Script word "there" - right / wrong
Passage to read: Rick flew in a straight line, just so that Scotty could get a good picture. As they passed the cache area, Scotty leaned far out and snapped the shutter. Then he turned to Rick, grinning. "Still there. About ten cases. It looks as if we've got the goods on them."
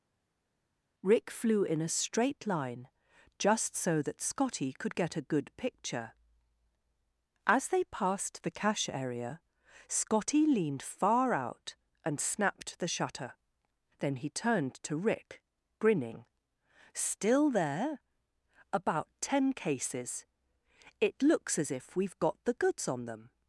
right